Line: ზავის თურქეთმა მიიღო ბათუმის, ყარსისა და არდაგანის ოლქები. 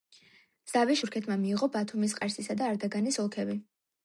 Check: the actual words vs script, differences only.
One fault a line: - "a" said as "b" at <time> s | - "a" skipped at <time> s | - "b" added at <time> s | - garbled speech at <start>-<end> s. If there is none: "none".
none